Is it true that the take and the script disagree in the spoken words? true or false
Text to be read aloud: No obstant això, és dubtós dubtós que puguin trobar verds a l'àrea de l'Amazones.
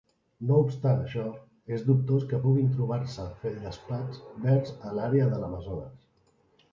true